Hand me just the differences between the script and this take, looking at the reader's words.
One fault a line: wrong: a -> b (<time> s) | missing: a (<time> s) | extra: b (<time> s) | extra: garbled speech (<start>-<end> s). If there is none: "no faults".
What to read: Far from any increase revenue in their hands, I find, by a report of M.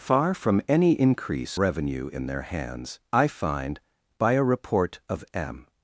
no faults